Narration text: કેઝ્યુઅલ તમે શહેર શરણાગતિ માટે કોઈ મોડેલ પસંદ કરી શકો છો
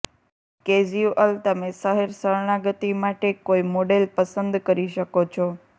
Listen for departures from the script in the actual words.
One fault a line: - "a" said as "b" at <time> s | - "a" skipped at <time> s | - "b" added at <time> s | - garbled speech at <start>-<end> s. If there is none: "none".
none